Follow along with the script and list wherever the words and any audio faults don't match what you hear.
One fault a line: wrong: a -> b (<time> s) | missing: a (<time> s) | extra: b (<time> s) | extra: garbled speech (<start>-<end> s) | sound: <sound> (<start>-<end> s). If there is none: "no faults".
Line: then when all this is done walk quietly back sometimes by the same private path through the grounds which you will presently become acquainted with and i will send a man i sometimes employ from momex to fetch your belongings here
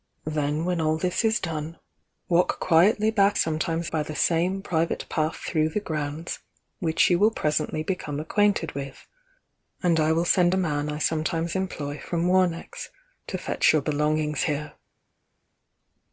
no faults